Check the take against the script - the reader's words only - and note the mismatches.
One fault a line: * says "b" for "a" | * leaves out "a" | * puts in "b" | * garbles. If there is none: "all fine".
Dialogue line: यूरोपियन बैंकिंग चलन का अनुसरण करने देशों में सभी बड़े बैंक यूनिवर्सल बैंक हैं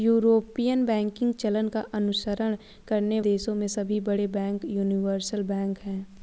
all fine